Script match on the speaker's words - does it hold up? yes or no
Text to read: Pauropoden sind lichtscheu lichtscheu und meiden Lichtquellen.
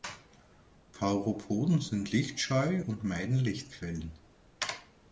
no